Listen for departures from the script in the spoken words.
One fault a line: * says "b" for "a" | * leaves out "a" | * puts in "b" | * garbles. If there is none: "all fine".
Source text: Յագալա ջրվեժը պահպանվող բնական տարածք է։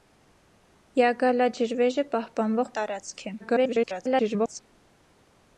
* leaves out "բնական"
* garbles